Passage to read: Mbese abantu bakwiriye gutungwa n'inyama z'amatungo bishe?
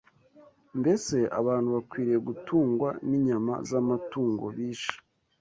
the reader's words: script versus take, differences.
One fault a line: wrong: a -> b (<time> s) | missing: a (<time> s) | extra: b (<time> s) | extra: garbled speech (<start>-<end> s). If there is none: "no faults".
no faults